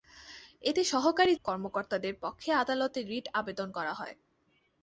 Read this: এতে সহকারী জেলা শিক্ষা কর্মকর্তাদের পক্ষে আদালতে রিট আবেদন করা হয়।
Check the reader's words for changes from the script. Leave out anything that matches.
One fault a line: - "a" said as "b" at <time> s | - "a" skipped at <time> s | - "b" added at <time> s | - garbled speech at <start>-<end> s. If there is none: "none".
- "জেলা শিক্ষা" skipped at 1.3 s